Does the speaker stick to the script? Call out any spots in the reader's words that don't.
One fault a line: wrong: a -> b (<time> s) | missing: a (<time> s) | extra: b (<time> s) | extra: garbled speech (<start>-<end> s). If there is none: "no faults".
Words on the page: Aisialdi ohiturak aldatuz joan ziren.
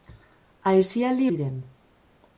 missing: ohiturak aldatuz joan (1.3 s)